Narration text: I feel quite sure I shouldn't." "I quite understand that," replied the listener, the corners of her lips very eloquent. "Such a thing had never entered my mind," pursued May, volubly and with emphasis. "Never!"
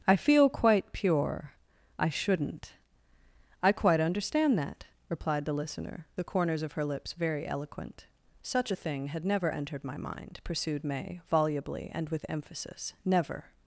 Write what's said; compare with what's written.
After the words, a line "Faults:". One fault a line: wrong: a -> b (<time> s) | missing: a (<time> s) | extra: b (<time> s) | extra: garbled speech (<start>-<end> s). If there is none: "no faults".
I feel quite pure I shouldn't." "I quite understand that," replied the listener, the corners of her lips very eloquent. "Such a thing had never entered my mind," pursued May, volubly and with emphasis. "Never!"
Faults:
wrong: sure -> pure (0.9 s)